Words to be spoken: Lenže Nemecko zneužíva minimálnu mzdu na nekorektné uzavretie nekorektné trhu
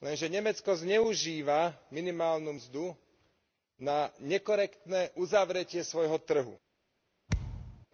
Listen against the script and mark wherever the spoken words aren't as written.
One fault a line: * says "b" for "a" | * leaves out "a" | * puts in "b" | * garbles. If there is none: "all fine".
* says "svojho" for "nekorektné"